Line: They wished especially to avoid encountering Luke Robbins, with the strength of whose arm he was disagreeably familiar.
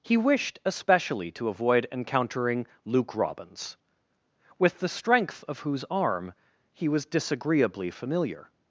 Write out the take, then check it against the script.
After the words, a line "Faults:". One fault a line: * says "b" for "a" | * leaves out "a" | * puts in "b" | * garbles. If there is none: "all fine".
He wished especially to avoid encountering Luke Robbins, with the strength of whose arm he was disagreeably familiar.
Faults:
* says "He" for "They"